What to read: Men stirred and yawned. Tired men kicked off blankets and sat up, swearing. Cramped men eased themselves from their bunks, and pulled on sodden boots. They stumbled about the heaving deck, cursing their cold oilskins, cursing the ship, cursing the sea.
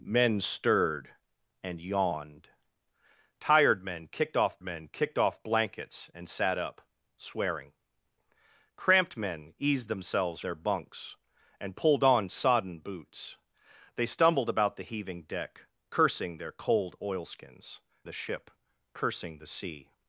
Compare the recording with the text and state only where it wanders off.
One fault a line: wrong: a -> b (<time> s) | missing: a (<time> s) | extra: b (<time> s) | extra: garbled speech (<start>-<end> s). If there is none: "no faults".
extra: men kicked off (4.6 s)
missing: from (10.4 s)
missing: cursing (17.8 s)